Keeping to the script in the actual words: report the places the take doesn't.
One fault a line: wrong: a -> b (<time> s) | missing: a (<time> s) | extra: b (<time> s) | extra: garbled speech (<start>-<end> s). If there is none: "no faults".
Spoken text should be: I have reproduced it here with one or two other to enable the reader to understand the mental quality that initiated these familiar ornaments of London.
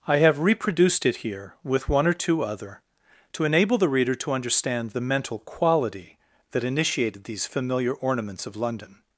no faults